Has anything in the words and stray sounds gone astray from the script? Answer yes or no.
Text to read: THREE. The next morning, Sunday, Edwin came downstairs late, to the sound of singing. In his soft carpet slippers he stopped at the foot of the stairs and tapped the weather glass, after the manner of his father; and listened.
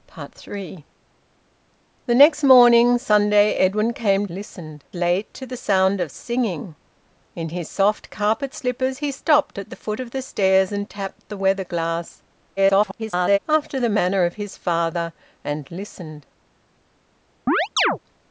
yes